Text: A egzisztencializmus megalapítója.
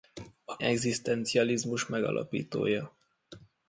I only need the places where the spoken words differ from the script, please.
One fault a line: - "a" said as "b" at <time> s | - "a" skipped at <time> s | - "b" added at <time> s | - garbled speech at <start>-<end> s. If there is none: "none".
none